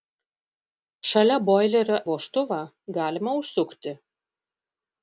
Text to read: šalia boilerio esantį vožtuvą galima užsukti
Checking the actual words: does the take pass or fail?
fail